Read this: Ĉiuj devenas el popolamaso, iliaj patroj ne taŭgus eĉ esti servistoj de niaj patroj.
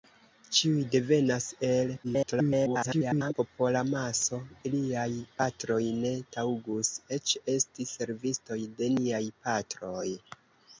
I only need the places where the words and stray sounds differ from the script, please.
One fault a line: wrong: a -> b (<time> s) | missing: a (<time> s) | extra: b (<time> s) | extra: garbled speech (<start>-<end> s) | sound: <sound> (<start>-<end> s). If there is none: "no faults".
extra: garbled speech (2.0-3.3 s)